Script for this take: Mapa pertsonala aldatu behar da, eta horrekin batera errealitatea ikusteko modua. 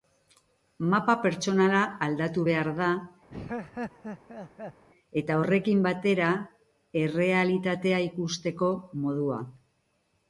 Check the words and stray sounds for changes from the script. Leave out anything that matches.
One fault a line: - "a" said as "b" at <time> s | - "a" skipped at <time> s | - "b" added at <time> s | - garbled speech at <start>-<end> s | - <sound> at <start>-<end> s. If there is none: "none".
- laugh at 3.3-4.8 s